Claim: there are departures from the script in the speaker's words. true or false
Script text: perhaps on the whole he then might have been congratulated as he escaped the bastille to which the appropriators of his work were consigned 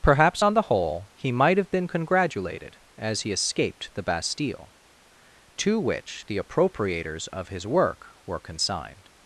true